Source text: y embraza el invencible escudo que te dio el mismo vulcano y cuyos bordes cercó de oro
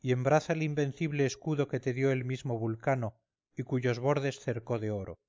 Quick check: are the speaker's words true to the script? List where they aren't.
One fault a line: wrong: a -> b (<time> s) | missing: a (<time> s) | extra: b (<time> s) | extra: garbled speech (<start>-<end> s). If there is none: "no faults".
no faults